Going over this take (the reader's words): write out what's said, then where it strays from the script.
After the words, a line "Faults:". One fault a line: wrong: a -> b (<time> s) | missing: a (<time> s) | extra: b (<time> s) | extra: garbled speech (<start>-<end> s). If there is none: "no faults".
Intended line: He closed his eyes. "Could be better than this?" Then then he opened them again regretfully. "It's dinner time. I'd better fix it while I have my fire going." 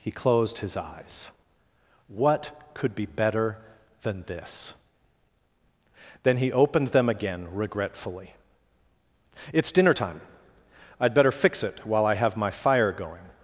He closed his eyes. "What could be better than this?" Then he opened them again regretfully. "It's dinner time. I'd better fix it while I have my fire going."
Faults:
extra: What (2.1 s)
missing: then (6.4 s)